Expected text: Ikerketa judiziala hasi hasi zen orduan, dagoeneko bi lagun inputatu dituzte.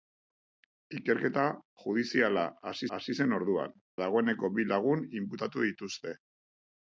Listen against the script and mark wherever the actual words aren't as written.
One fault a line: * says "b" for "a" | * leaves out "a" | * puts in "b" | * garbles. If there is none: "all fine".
all fine